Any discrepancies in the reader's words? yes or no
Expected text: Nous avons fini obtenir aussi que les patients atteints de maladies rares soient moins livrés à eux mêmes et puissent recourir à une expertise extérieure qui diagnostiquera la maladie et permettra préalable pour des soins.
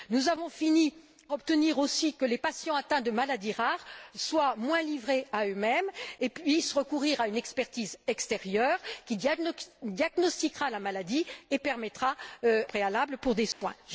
no